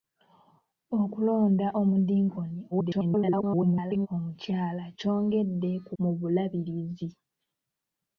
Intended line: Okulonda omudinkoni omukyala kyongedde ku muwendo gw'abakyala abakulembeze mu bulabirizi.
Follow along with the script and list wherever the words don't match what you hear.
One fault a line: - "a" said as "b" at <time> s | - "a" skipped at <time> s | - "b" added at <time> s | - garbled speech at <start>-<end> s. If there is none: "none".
- garbled speech at 2.7-4.1 s
- "muwendo gw'abakyala abakulembeze" skipped at 5.9 s